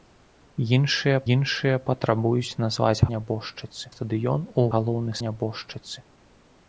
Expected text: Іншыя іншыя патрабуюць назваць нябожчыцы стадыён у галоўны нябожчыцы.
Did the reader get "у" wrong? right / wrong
right